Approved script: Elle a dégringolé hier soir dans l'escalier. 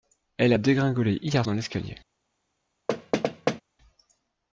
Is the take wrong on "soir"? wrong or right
wrong